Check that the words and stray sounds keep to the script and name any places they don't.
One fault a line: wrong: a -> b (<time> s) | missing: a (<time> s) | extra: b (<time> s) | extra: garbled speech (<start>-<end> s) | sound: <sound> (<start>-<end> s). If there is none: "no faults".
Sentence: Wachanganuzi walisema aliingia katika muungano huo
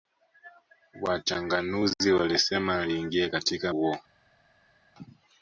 missing: muungano (3.7 s)